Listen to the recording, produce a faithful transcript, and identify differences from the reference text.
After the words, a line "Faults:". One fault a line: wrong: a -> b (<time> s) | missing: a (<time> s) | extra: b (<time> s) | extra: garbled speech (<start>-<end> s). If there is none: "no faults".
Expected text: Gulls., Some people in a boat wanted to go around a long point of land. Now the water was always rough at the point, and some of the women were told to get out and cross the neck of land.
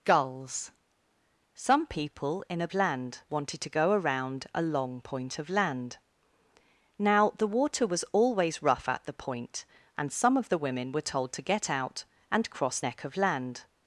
Gulls., Some people in a land wanted to go around a long point of land. Now the water was always rough at the point, and some of the women were told to get out and cross neck of land.
Faults:
wrong: boat -> land (2.7 s)
missing: the (12.8 s)